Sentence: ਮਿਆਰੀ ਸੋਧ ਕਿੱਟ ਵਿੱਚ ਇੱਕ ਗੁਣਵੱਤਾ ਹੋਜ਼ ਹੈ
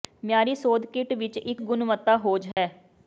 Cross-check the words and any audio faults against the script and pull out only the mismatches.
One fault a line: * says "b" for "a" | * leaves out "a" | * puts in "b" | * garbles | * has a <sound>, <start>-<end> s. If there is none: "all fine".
* has a dropout, 2.5-2.6 s